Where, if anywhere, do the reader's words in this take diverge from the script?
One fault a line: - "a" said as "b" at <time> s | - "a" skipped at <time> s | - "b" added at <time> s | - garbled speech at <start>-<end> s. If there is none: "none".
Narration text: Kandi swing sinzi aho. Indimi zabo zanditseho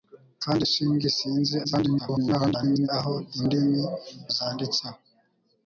- garbled speech at 1.6-2.9 s
- "zabo" skipped at 3.8 s